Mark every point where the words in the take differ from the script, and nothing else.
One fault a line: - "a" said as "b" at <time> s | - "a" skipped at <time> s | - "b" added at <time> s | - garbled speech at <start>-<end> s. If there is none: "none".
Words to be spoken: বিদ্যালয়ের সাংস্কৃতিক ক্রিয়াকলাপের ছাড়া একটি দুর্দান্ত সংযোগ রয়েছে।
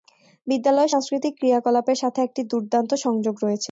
- "ছাড়া" said as "সাথে" at 2.0 s